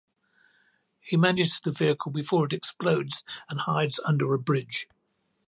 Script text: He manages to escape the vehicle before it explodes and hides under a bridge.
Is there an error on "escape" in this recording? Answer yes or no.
yes